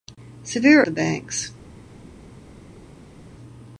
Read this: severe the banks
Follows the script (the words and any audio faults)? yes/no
yes